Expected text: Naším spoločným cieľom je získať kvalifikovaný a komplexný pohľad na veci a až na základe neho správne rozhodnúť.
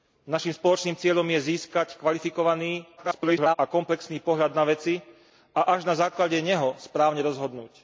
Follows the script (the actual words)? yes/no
no